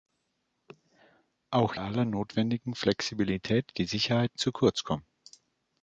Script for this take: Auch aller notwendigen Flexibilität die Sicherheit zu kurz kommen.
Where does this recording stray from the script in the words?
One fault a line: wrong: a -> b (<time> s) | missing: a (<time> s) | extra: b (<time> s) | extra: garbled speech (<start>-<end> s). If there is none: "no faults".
no faults